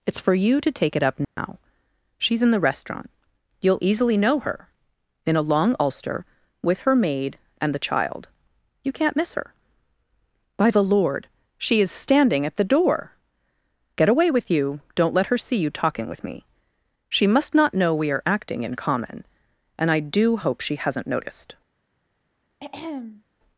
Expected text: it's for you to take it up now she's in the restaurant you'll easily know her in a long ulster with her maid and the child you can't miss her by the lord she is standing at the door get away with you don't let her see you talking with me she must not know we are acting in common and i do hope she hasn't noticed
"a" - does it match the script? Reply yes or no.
yes